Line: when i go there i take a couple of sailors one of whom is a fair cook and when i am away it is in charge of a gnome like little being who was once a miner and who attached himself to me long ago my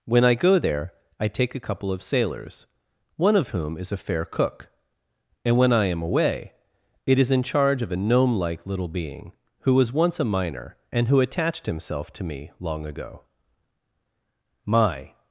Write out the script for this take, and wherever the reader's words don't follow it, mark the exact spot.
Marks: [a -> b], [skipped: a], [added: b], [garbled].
when i go there i take a couple of sailors one of whom is a fair cook and when i am away it is in charge of a gnome like little being who was once a miner and who attached himself to me long ago my